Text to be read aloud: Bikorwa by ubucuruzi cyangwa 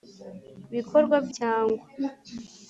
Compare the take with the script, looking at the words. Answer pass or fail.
fail